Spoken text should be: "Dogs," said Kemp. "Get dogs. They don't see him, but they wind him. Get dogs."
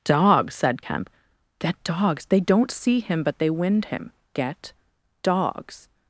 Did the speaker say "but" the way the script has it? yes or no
yes